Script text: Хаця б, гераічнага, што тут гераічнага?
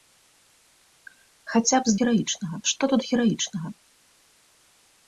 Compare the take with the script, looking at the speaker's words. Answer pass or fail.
pass